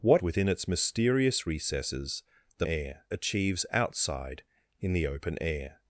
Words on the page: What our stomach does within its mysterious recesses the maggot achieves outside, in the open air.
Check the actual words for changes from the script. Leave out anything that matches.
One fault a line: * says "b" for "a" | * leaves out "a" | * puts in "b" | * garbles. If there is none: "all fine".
* leaves out "our stomach does"
* says "air" for "maggot"